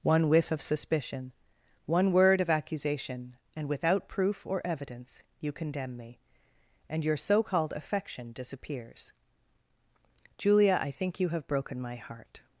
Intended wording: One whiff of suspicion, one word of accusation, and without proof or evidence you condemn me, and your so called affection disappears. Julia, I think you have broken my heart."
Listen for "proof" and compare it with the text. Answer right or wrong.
right